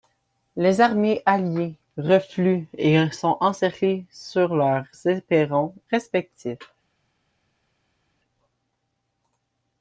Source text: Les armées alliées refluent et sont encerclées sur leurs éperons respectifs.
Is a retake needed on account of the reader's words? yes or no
no